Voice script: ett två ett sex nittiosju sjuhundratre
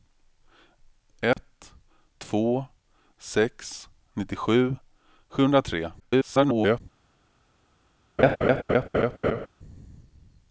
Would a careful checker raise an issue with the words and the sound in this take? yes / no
yes